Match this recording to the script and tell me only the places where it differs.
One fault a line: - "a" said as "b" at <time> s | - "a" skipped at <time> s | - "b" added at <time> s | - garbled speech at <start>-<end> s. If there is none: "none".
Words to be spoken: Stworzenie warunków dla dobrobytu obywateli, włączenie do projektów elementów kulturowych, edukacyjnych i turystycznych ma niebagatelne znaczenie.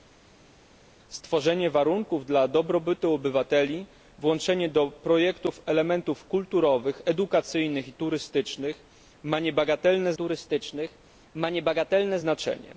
- "turystycznych ma niebagatelne" added at 10.1 s